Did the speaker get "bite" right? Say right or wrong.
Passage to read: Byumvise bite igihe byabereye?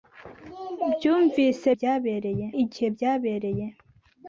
wrong